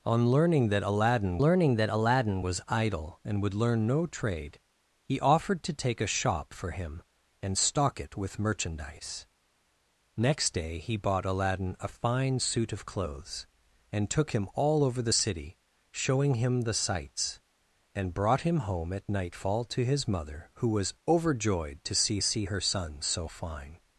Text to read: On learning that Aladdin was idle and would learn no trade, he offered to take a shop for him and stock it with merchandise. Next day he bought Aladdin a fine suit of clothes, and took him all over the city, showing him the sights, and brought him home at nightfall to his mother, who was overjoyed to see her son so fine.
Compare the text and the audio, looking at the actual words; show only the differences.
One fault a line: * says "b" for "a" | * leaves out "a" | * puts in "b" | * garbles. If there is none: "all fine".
* puts in "learning that Aladdin"
* puts in "see"